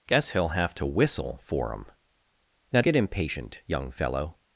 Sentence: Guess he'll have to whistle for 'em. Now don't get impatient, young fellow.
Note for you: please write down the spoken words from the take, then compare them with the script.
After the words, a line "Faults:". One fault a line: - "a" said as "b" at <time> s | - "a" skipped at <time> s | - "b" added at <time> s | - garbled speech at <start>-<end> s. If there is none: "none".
Guess he'll have to whistle for 'em. Now get impatient, young fellow.
Faults:
- "don't" skipped at 2.8 s